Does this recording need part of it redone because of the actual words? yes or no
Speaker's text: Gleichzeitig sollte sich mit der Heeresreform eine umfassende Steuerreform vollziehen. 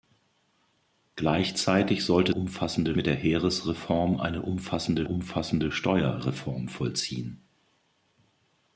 yes